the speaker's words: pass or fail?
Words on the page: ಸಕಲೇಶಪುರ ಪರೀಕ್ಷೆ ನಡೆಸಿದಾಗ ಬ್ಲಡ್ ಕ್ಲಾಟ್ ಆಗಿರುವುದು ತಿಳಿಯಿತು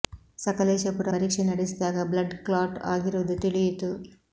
pass